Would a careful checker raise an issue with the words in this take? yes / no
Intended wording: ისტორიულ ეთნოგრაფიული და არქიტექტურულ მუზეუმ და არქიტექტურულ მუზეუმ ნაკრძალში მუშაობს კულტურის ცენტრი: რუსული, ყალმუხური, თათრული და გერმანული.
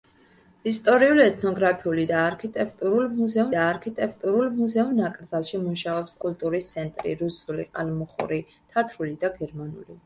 no